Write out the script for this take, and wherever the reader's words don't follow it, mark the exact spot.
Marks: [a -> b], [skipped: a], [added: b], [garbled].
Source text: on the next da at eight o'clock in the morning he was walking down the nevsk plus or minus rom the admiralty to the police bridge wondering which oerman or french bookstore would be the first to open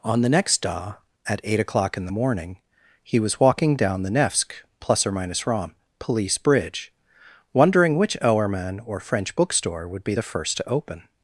on the next da at eight o'clock in the morning he was walking down the nevsk plus or minus rom [skipped: the admiralty to the] police bridge wondering which oerman or french bookstore would be the first to open